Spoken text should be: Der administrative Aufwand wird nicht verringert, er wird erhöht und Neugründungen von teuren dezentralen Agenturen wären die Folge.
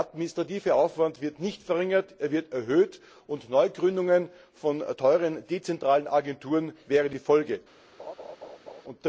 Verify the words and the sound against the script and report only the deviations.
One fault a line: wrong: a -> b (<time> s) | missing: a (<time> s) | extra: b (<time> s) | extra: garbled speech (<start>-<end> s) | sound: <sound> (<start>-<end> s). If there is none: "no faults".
sound: laugh (8.0-8.8 s)